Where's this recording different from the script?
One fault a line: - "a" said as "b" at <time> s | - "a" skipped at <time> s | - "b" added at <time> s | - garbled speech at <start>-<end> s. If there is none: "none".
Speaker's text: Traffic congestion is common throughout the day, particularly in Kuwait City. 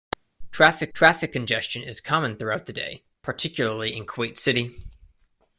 - "traffic" added at 0.9 s